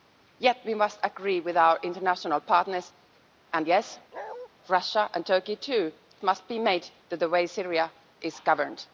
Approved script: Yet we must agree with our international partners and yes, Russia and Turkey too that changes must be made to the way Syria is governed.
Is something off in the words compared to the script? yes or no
yes